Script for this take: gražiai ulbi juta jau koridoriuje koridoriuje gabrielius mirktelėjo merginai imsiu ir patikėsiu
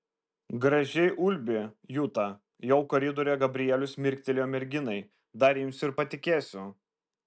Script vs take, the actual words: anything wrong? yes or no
yes